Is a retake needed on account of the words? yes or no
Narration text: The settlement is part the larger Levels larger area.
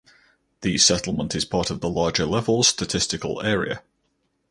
yes